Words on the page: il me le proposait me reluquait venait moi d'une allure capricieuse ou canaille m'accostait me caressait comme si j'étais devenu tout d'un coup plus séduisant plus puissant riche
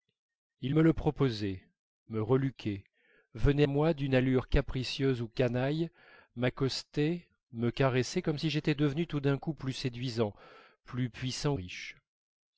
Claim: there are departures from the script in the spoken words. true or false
false